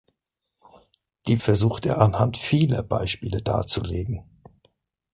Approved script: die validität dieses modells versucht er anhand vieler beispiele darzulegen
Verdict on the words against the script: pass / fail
fail